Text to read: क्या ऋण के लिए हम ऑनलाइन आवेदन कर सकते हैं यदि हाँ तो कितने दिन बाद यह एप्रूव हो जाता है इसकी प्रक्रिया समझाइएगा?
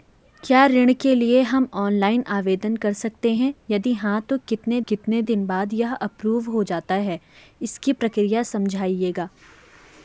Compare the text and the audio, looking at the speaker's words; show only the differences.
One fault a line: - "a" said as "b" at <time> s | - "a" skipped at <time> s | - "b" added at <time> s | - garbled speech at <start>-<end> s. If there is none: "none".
- "कितने" added at 4.9 s